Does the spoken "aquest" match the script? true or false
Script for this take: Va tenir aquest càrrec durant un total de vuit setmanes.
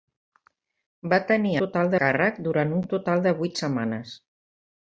false